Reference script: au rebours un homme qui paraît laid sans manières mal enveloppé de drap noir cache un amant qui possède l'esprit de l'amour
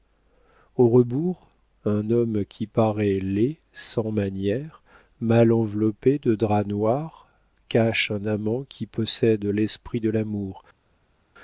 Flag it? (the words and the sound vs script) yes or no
no